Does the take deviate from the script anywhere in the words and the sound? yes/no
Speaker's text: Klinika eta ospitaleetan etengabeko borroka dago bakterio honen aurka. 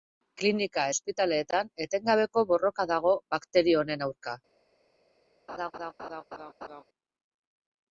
yes